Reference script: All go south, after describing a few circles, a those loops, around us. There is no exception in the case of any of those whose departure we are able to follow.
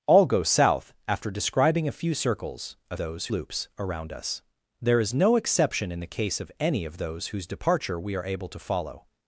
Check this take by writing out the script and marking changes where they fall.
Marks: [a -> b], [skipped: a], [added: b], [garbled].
All go south, after describing a few circles, a those loops, around us. There is no exception in the case of any of those whose departure we are able to follow.